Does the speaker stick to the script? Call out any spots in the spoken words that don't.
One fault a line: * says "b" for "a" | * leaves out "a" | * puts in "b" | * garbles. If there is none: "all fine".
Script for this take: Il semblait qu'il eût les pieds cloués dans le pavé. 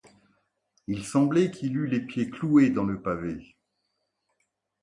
all fine